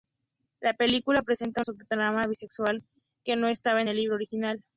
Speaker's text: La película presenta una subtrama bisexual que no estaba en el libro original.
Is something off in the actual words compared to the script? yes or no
yes